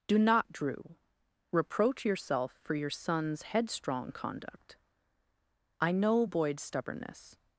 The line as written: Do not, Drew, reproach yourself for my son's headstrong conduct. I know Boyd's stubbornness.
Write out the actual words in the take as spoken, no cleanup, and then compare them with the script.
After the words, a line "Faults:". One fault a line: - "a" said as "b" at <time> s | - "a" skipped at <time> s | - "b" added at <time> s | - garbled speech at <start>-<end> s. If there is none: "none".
Do not, Drew, reproach yourself for your son's headstrong conduct. I know Boyd's stubbornness.
Faults:
- "my" said as "your" at 2.7 s